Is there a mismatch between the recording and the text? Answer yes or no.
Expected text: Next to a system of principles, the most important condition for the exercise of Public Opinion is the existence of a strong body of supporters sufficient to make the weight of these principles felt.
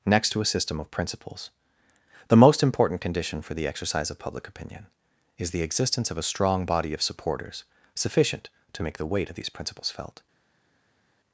no